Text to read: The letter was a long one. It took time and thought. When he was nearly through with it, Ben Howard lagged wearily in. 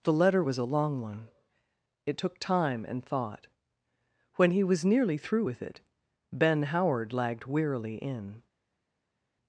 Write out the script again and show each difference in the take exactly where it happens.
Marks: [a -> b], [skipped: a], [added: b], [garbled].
The letter was a long one. It took time and thought. When he was nearly through with it, Ben Howard lagged wearily in.